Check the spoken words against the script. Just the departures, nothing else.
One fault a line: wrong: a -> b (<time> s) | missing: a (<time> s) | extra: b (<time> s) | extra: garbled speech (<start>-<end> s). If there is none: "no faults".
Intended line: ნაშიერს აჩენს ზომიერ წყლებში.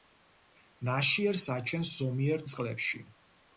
no faults